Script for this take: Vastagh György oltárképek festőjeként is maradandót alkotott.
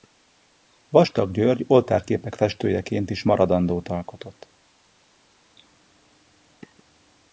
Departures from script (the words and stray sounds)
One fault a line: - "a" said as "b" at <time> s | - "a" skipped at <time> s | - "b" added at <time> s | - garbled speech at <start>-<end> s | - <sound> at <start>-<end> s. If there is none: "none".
none